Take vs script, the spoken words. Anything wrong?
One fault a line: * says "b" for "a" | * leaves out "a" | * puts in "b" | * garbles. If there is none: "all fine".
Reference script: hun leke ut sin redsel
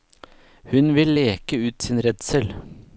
* puts in "vil"